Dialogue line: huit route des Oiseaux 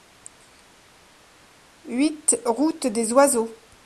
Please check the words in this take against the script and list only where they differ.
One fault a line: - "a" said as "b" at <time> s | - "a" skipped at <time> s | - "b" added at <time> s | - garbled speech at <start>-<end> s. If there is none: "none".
none